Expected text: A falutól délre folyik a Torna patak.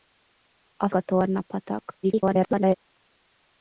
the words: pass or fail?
fail